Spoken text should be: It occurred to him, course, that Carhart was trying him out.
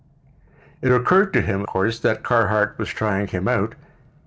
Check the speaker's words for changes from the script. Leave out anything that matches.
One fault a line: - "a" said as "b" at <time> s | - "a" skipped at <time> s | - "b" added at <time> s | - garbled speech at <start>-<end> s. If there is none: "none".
none